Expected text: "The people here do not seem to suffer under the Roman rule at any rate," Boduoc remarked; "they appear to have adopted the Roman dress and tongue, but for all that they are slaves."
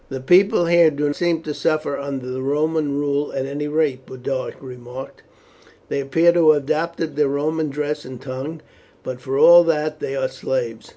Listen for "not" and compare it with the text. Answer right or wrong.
wrong